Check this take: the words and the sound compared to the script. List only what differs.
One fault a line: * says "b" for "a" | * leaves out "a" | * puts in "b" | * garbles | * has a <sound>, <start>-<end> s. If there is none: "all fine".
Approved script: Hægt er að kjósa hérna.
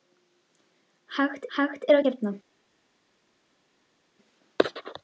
* puts in "hægt"
* leaves out "kjósa"